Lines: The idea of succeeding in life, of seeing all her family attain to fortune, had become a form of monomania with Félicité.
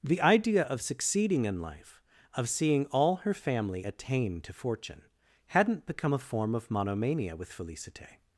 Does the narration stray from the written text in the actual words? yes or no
yes